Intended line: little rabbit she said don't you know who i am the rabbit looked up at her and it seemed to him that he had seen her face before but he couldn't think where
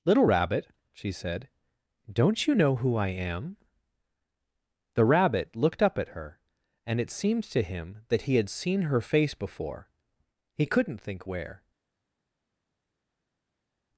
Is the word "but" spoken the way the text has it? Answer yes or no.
no